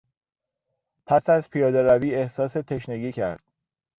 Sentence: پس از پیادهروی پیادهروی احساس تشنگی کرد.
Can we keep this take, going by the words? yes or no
no